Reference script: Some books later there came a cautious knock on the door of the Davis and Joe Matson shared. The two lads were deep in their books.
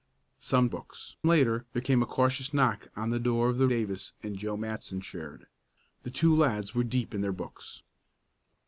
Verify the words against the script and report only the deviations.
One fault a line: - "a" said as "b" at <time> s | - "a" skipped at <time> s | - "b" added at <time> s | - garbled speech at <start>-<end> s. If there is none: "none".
none